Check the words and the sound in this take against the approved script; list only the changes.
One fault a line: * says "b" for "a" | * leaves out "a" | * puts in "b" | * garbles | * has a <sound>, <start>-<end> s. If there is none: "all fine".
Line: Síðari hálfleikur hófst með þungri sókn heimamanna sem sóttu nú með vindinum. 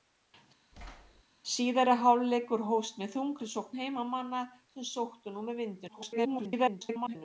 * has a thud, 0.7-1.2 s
* garbles